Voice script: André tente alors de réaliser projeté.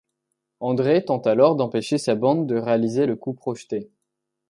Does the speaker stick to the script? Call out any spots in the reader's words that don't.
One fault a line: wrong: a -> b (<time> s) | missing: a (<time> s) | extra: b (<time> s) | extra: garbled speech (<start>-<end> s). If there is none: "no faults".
extra: d'empêcher sa bande (1.6 s)
extra: le coup (3.0 s)